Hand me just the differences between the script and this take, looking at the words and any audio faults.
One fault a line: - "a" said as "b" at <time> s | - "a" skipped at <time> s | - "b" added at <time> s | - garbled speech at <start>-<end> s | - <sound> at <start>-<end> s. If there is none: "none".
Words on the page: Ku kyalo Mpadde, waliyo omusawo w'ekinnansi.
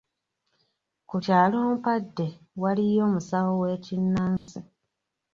- dropout at 4.4-4.5 s